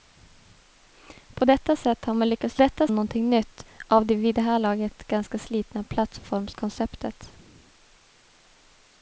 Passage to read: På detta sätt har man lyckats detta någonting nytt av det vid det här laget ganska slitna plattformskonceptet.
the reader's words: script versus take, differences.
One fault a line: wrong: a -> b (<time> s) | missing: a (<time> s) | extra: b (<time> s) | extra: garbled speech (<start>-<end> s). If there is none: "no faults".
no faults